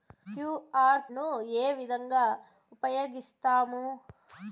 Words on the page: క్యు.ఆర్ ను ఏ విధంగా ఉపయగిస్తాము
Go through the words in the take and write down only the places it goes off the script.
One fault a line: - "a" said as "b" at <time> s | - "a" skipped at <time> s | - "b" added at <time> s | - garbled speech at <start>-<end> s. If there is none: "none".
none